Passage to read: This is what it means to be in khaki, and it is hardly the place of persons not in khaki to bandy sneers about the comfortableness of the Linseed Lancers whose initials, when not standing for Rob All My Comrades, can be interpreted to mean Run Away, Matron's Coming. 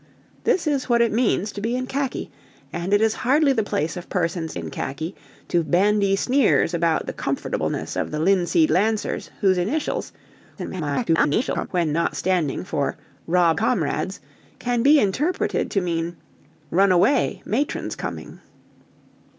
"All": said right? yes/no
no